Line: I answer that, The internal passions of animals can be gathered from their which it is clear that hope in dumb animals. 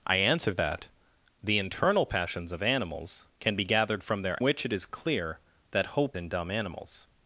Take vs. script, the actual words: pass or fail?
pass